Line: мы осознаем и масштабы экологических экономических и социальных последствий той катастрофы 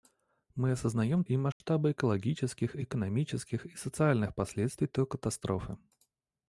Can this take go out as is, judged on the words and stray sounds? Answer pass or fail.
fail